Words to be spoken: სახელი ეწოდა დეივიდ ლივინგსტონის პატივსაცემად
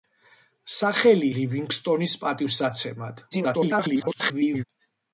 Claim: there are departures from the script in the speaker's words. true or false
true